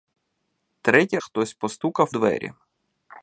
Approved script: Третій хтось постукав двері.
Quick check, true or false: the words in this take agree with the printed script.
true